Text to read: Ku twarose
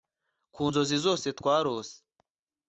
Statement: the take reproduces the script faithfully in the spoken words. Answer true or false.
false